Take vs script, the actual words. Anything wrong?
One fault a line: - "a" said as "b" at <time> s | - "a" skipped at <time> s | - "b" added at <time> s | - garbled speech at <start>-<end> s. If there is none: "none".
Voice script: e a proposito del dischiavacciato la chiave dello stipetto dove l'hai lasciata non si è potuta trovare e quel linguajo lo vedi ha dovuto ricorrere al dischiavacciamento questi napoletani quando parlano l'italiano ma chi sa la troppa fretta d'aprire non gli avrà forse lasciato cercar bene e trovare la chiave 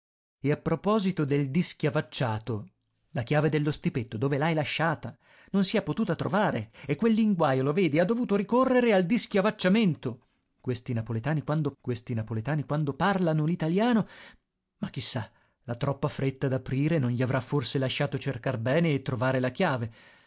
- "questi napoletani quando" added at 11.8 s